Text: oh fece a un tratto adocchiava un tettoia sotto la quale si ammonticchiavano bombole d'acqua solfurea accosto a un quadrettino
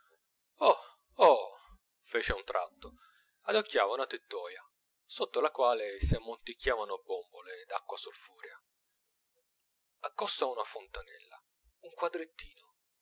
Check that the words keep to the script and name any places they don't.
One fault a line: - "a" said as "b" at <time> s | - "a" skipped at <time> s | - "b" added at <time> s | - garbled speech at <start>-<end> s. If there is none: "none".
- "un" said as "una" at 3.9 s
- "una fontanella" added at 10.5 s